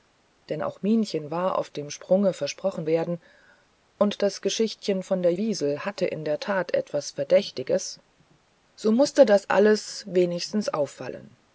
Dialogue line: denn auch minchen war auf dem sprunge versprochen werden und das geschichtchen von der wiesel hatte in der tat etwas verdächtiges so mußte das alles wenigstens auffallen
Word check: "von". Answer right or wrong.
right